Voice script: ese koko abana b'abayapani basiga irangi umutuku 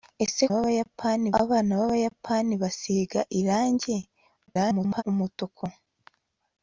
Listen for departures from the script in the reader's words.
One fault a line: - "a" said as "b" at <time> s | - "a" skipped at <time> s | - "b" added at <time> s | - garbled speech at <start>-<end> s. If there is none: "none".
- "koko" said as "b'abayapani" at 0.5 s
- garbled speech at 4.5-5.0 s